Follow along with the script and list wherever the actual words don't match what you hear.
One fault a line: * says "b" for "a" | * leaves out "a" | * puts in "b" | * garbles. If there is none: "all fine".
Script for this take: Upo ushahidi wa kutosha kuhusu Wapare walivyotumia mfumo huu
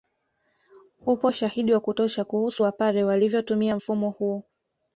all fine